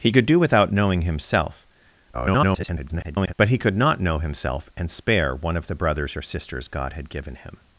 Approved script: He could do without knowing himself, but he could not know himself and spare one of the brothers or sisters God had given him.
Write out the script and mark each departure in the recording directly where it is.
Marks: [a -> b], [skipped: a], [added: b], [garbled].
He could do without knowing himself, [garbled] but he could not know himself and spare one of the brothers or sisters God had given him.